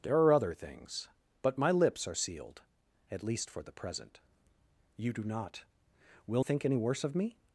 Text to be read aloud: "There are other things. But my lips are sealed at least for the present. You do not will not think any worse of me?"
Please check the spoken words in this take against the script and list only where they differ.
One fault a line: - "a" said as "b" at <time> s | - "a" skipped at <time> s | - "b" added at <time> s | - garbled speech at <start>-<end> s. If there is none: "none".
- "not" skipped at 6.4 s